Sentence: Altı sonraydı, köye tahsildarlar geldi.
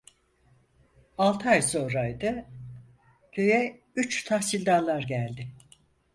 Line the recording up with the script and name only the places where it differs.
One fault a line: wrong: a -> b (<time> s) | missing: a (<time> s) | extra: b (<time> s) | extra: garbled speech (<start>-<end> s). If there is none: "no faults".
extra: ay (1.5 s)
extra: üç (4.0 s)